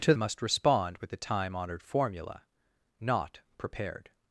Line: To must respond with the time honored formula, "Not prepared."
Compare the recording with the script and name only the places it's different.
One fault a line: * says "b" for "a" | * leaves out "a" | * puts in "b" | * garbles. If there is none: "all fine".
all fine